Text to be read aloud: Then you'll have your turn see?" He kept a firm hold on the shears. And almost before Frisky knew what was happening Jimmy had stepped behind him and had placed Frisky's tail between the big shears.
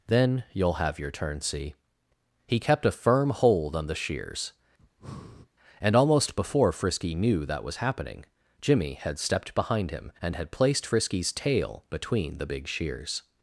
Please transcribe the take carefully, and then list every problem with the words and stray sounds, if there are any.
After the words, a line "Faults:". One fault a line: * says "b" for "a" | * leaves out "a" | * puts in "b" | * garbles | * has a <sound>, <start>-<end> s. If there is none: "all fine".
Then you'll have your turn see?" He kept a firm hold on the shears. And almost before Frisky knew that was happening Jimmy had stepped behind him and had placed Frisky's tail between the big shears.
Faults:
* has a breath, 4.8-5.5 s
* says "that" for "what"